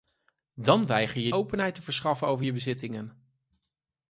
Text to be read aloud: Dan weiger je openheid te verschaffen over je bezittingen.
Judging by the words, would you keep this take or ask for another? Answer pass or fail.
pass